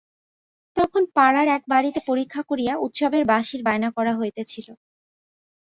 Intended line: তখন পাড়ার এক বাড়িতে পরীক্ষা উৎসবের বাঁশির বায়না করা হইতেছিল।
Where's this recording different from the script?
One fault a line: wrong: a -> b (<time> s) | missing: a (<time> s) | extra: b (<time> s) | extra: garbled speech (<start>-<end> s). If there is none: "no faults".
extra: করিয়া (2.5 s)